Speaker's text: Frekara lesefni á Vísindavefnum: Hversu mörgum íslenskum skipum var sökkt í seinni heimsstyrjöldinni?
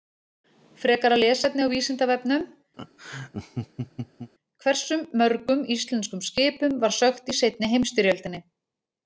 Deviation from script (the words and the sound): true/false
true